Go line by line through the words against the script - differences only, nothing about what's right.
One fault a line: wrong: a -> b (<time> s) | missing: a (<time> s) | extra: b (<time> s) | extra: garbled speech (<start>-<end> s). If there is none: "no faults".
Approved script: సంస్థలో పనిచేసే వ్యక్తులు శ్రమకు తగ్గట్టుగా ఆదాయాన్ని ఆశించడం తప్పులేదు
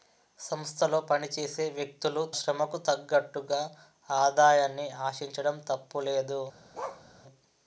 no faults